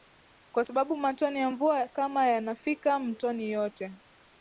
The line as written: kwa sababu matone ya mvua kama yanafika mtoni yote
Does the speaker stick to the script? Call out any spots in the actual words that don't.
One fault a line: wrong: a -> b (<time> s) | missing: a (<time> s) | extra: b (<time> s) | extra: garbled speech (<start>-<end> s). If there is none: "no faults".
no faults